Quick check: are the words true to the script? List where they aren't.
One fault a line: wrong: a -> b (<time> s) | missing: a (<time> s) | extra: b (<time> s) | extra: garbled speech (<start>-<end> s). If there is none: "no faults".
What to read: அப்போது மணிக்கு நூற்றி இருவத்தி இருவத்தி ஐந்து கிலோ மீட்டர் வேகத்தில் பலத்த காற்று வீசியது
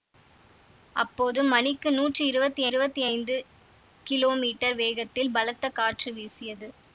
no faults